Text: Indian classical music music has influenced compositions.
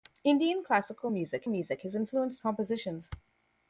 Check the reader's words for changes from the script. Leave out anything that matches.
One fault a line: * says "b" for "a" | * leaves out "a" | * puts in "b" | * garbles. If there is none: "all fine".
all fine